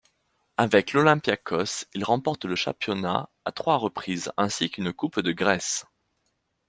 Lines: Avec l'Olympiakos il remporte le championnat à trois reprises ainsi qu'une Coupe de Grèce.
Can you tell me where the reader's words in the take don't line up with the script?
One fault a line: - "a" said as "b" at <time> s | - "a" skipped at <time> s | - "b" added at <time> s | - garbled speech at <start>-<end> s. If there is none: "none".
none